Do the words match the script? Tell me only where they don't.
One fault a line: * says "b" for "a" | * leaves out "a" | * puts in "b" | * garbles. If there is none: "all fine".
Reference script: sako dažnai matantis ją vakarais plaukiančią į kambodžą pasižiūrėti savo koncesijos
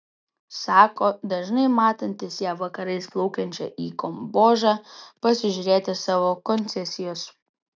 all fine